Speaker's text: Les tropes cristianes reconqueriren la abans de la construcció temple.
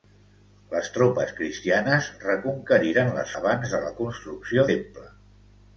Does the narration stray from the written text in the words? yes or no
no